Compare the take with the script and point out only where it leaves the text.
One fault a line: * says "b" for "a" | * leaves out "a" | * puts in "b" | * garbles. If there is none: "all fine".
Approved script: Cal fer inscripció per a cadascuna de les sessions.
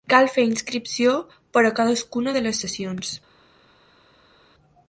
all fine